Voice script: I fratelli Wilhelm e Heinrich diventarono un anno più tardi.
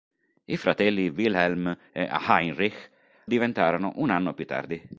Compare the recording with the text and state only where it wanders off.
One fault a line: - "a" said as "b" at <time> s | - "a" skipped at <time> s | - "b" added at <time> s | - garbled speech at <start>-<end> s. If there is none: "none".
none